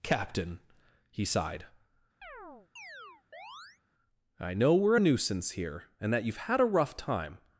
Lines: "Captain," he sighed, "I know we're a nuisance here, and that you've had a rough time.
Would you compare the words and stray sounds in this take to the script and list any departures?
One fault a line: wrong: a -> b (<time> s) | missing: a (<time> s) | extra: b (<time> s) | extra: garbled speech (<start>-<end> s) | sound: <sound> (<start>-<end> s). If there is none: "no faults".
sound: chirp (2.2-3.8 s)